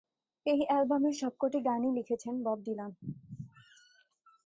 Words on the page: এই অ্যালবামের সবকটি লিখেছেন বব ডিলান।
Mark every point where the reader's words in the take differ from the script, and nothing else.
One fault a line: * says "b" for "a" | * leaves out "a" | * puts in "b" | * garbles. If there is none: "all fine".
* puts in "গানই"